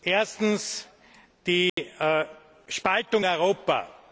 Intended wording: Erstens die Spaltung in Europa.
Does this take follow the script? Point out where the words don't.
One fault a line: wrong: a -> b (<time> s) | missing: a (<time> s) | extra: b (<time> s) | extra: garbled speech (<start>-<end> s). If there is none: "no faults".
missing: in (3.2 s)